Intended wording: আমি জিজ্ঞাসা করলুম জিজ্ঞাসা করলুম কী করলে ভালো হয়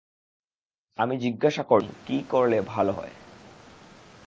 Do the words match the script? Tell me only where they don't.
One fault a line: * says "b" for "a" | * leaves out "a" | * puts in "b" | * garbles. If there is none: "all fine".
* leaves out "জিজ্ঞাসা করলুম"